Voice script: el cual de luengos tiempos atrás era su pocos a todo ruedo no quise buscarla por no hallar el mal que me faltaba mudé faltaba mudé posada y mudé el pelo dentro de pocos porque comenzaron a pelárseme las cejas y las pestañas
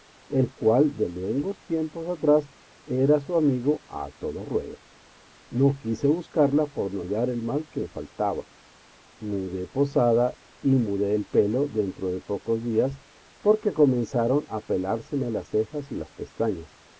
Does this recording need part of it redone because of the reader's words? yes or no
yes